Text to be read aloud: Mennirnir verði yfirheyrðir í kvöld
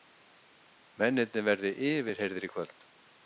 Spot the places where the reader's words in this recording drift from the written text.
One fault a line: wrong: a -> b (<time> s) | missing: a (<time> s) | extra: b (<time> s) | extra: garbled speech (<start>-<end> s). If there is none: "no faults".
no faults